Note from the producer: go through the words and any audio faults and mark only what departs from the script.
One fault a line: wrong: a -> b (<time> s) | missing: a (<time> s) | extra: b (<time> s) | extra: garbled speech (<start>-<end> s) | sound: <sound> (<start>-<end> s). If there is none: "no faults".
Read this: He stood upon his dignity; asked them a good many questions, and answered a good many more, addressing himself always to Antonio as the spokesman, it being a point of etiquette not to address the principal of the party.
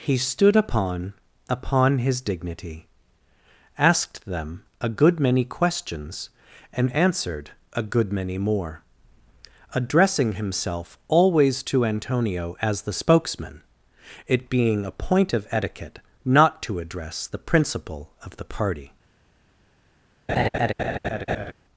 extra: upon (1.5 s)
sound: laugh (20.3-21.5 s)